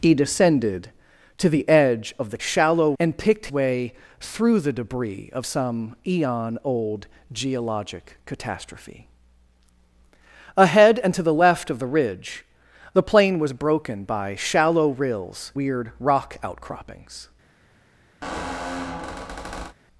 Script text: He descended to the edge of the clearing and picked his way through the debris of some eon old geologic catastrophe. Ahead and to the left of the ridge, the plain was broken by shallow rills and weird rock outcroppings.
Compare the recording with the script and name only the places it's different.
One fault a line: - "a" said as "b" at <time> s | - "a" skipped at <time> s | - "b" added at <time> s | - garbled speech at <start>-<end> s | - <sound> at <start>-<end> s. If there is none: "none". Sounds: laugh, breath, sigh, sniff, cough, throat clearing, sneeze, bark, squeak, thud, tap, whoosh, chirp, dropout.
- "clearing" said as "shallow" at 2.4 s
- "his" skipped at 3.5 s
- "and" skipped at 15.5 s
- squeak at 18.2-19.8 s